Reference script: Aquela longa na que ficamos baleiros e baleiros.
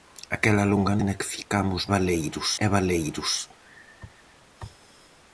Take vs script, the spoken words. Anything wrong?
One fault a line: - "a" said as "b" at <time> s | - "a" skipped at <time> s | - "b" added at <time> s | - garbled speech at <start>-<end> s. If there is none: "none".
none